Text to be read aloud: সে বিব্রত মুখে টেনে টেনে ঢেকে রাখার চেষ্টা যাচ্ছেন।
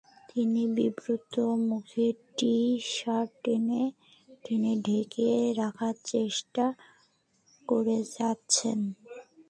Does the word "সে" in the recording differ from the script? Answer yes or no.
yes